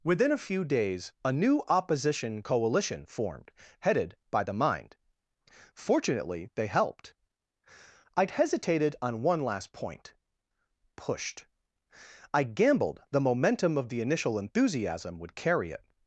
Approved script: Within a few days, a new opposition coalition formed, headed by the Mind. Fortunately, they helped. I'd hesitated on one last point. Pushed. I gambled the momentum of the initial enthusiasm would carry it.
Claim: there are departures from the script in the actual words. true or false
false